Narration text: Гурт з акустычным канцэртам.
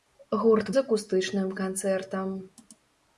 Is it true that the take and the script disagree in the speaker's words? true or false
false